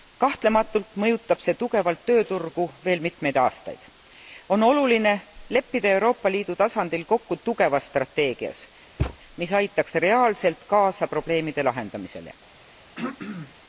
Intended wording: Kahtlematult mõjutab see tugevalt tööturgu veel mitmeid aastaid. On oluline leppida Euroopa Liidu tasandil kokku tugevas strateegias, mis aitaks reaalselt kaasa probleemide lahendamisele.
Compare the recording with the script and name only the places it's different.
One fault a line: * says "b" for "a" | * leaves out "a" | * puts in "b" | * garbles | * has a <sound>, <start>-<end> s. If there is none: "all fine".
* has a thud, 9.0-9.2 s
* has a throat clearing, 13.0-13.5 s